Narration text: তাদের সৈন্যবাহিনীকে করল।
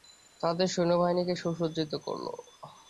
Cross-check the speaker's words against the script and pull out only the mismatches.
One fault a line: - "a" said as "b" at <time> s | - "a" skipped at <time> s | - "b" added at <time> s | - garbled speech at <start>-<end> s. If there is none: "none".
- "সুসজ্জিত" added at 1.3 s